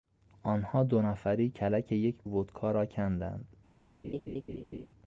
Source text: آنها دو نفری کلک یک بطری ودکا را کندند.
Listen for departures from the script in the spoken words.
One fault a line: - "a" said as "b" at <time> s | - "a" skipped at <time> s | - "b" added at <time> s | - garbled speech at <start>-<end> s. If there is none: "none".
- "بطری" skipped at 2.2 s